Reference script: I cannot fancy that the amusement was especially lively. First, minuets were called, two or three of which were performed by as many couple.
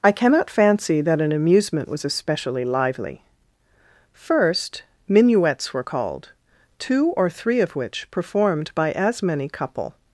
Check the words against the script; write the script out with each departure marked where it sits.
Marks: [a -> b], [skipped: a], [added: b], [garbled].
I cannot fancy that [the -> an] amusement was especially lively. First, minuets were called, two or three of which [skipped: were] performed by as many couple.